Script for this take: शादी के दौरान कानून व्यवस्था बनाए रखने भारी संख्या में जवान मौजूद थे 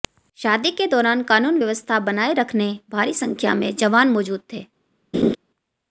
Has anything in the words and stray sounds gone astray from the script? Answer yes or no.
yes